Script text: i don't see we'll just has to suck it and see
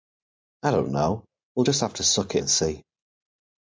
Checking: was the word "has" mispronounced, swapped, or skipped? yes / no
yes